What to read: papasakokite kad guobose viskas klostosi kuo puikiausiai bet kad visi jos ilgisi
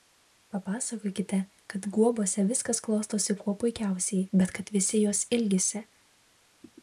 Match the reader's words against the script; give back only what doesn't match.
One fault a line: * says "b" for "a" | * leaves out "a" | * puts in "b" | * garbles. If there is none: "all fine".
all fine